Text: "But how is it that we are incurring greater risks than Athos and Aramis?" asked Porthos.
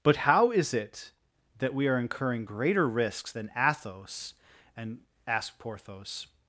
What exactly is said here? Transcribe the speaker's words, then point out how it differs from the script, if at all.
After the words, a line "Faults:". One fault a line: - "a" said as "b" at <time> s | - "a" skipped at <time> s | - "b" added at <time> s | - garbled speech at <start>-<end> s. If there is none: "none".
"But how is it that we are incurring greater risks than Athos and?" asked Porthos.
Faults:
- "Aramis" skipped at 5.0 s